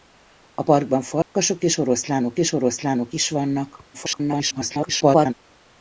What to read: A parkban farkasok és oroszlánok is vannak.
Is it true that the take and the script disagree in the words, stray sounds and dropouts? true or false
true